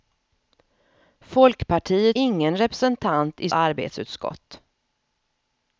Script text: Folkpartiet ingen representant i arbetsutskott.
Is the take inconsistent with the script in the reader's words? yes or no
no